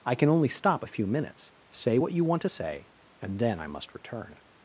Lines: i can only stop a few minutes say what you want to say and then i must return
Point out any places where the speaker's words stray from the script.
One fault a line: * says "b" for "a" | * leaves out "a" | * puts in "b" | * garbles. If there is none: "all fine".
all fine